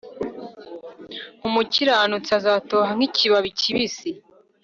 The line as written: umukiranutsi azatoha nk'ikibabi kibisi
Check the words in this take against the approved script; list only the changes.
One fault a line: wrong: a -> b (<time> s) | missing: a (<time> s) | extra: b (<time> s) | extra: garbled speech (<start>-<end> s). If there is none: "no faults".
no faults